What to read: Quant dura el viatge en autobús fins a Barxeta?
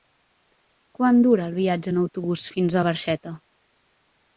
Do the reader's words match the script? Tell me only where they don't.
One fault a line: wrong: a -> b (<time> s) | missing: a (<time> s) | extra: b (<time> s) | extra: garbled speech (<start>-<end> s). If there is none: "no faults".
no faults